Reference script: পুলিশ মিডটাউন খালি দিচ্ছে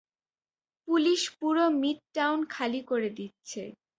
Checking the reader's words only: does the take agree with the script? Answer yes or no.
no